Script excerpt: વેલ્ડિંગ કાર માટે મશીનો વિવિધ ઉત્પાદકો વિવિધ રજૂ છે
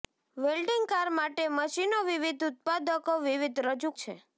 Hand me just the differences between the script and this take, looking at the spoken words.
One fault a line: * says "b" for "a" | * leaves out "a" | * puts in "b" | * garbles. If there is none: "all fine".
all fine